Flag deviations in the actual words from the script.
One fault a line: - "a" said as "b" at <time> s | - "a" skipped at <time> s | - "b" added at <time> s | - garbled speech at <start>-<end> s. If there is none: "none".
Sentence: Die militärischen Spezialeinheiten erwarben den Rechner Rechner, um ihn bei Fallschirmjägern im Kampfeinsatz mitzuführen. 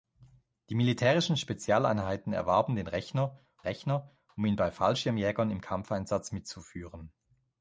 none